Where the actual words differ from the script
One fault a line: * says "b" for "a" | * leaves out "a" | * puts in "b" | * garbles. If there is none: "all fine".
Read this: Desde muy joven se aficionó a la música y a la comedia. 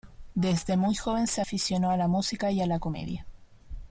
all fine